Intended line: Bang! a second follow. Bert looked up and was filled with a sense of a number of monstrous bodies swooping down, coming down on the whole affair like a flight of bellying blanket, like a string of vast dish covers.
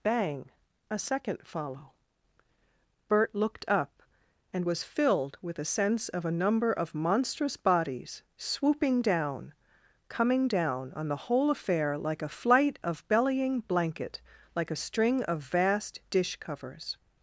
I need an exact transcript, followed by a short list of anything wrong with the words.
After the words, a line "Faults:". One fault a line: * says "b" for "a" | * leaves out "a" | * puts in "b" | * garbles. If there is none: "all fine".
Bang! a second follow. Bert looked up and was filled with a sense of a number of monstrous bodies swooping down, coming down on the whole affair like a flight of bellying blanket, like a string of vast dish covers.
Faults:
all fine